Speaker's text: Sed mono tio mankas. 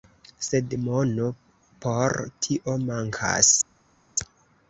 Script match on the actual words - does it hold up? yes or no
no